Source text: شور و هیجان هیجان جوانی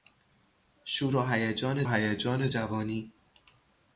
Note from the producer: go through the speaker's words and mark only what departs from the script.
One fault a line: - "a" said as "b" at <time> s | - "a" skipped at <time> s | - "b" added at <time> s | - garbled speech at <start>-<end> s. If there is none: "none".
none